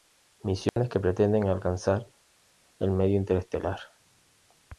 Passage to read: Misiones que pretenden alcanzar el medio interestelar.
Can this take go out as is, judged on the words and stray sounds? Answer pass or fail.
fail